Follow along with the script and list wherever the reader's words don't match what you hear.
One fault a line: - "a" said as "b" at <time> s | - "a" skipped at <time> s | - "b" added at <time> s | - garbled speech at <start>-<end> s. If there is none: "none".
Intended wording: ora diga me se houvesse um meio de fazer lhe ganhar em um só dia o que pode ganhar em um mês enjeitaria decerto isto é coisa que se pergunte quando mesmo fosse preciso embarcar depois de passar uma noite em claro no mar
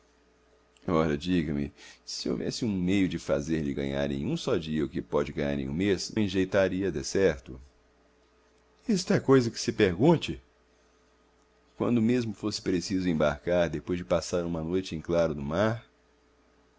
none